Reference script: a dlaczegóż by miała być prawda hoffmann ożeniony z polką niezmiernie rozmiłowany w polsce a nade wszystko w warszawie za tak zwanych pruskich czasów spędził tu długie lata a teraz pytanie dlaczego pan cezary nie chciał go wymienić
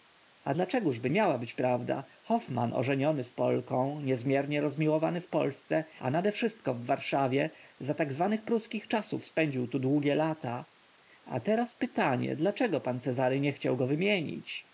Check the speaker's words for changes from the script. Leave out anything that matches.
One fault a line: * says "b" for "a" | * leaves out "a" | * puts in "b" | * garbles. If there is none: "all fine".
all fine